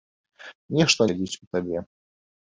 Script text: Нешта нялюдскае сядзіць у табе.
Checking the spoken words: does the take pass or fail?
fail